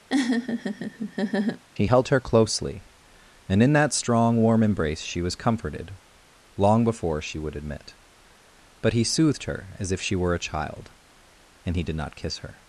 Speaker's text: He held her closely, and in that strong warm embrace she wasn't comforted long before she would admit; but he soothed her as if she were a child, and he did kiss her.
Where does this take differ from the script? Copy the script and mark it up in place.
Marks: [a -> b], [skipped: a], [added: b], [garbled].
He held her closely, and in that strong warm embrace she [wasn't -> was] comforted long before she would admit; but he soothed her as if she were a child, and he did [added: not] kiss her.